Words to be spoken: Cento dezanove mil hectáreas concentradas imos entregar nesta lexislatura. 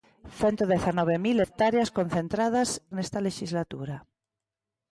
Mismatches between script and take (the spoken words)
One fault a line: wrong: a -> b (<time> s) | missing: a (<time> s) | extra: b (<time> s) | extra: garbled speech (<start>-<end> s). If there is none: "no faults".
missing: imos entregar (2.7 s)